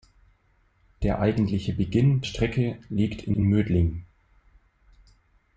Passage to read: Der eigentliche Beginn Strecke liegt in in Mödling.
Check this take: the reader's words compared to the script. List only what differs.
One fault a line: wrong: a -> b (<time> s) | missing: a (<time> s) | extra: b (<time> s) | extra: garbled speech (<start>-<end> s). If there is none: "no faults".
no faults